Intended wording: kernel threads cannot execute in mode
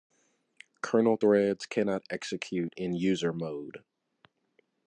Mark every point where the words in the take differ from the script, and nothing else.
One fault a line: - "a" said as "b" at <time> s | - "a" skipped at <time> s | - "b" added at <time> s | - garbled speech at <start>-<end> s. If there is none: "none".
- "user" added at 2.9 s